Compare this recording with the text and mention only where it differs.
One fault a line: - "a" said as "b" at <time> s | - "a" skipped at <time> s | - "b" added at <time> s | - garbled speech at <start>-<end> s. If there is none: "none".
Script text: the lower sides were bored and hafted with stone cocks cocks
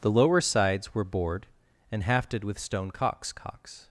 none